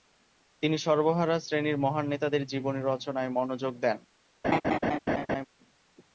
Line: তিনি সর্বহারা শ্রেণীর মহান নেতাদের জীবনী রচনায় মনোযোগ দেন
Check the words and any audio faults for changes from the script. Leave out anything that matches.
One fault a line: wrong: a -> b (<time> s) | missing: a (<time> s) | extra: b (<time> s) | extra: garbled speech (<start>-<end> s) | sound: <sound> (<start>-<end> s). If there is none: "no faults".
sound: laugh (4.4-5.4 s)